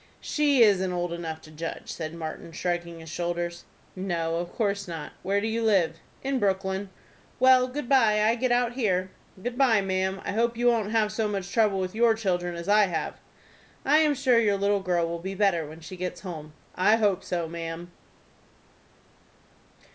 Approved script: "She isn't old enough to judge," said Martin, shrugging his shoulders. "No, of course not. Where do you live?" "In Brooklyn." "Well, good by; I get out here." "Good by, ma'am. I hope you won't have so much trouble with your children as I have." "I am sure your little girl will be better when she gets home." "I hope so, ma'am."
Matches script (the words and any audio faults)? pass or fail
pass